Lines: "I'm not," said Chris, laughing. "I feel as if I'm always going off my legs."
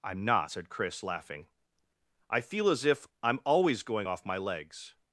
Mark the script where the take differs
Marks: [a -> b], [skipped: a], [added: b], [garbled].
"I'm not," said Chris, laughing. "I feel as if I'm always going off my legs."